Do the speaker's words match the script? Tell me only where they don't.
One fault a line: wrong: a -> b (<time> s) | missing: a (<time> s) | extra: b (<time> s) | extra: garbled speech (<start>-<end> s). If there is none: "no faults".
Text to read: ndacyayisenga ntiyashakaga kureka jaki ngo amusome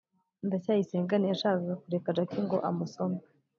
no faults